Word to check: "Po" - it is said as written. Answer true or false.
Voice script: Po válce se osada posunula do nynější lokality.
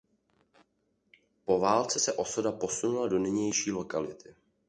true